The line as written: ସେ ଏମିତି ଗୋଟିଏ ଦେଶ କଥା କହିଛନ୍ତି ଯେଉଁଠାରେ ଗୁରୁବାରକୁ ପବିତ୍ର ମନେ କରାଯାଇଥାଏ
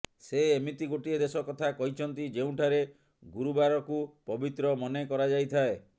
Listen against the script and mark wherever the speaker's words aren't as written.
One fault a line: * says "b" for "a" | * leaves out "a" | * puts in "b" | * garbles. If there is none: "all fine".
all fine